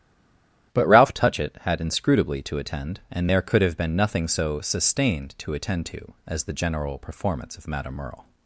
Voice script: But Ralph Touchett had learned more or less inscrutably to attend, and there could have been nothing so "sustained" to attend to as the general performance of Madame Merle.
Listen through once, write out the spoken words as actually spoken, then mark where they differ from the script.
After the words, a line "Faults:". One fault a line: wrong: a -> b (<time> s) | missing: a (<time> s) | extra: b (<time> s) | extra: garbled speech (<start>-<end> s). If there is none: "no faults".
But Ralph Touchett had inscrutably to attend, and there could have been nothing so "sustained" to attend to as the general performance of Madame Merle.
Faults:
missing: learned more or less (1.8 s)